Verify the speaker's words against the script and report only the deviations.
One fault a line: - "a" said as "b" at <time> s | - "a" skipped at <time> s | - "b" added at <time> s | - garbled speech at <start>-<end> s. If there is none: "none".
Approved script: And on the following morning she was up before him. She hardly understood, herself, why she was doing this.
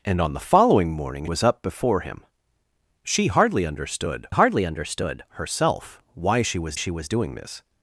- "she" skipped at 1.3 s
- "hardly understood" added at 4.3 s
- "she was" added at 6.7 s